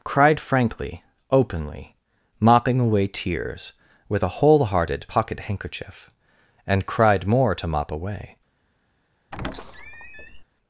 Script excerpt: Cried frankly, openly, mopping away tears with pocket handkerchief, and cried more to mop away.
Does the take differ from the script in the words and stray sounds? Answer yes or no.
yes